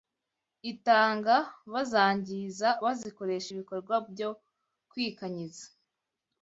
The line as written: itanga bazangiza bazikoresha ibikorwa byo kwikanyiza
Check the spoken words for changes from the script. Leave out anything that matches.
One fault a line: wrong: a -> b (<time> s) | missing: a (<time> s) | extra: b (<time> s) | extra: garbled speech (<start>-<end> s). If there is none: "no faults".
no faults